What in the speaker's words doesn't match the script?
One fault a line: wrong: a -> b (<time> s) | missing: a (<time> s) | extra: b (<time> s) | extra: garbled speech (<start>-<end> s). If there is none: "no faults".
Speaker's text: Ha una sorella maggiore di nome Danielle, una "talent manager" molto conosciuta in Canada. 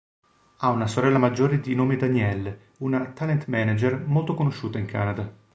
no faults